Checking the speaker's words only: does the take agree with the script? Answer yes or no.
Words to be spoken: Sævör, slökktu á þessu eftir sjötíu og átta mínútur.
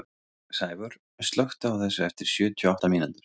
yes